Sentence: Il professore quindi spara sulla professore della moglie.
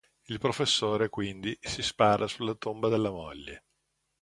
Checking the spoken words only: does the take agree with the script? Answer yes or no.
no